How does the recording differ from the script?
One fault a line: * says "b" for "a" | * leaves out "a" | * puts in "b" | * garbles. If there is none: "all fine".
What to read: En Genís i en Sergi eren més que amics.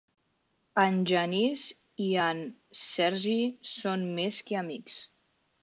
* says "són" for "eren"